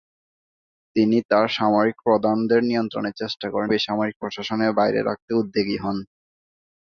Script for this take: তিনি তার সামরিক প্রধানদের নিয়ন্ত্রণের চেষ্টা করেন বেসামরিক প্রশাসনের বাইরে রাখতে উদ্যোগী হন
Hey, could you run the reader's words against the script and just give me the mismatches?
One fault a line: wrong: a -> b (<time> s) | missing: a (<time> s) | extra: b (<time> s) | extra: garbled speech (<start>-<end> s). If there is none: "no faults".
no faults